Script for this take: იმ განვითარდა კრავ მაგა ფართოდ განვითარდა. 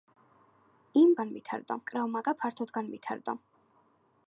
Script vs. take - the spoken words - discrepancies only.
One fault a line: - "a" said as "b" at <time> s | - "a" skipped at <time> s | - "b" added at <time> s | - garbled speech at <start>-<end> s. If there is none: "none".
none